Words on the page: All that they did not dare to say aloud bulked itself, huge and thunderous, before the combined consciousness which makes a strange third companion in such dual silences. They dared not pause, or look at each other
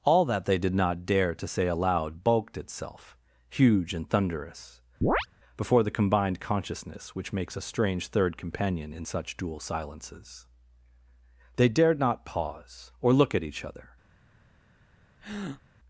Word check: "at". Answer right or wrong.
right